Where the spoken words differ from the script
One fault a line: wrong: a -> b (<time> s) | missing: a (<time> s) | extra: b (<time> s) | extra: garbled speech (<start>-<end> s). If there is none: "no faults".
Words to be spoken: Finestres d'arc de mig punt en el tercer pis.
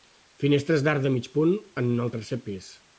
no faults